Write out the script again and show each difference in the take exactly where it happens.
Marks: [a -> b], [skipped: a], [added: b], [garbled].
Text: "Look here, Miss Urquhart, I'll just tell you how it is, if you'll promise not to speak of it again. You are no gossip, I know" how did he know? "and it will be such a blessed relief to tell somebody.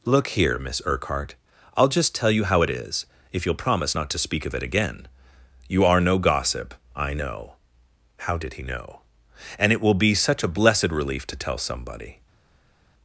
"Look here, Miss Urquhart, I'll just tell you how it is, if you'll promise not to speak of it again. You are no gossip, I know" how did he know? "and it will be such a blessed relief to tell somebody.